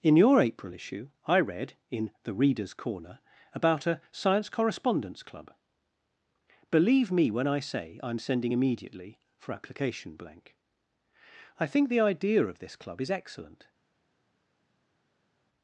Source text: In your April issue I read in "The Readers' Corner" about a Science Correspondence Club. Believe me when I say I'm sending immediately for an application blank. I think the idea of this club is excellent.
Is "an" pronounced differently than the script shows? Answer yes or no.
yes